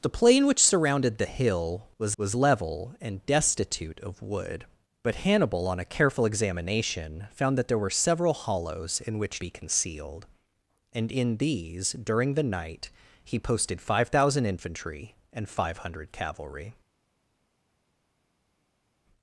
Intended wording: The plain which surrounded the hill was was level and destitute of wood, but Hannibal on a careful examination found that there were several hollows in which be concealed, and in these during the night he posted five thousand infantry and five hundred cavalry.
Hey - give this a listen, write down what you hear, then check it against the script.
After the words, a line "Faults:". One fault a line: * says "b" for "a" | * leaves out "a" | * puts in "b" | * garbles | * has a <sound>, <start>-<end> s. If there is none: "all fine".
The plain which surrounded the hill was was level and destitute of wood, but Hannibal on a careful examination found that there were several hollows in which be concealed, and in these during the night he posted five thousand infantry and five hundred cavalry.
Faults:
all fine